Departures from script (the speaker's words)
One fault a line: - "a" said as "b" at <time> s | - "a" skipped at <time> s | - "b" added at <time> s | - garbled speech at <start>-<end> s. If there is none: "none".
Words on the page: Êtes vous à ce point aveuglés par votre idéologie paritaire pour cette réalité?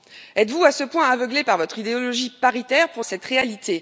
none